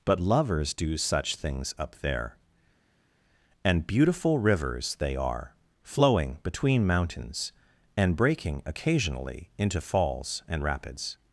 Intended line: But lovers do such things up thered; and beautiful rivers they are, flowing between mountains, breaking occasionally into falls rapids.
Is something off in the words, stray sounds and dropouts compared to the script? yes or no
yes